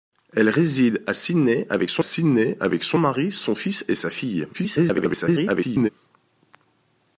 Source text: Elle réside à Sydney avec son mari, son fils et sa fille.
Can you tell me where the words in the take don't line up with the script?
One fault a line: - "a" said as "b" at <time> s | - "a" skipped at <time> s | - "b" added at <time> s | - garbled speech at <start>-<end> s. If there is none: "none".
- "Sydney avec son" added at 2.0 s
- garbled speech at 4.5-5.9 s